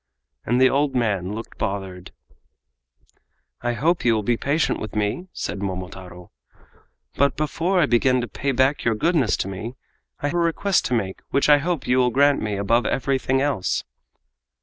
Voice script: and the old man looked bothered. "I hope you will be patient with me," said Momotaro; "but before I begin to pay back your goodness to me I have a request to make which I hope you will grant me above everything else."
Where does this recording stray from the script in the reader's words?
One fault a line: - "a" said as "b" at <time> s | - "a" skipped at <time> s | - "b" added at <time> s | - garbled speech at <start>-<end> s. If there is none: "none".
- "have" skipped at 10.3 s